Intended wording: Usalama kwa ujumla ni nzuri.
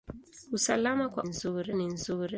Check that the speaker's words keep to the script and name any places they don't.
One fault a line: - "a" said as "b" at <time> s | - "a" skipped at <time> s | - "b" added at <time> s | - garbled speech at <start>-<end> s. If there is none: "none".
- "ujumla" said as "nzuri" at 1.2 s